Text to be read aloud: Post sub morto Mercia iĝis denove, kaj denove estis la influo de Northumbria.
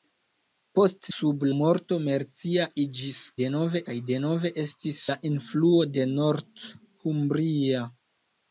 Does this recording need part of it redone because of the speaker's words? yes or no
no